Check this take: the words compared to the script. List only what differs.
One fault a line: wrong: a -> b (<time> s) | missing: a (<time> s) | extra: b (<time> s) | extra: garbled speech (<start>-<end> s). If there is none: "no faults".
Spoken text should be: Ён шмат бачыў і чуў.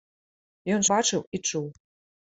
missing: шмат (0.8 s)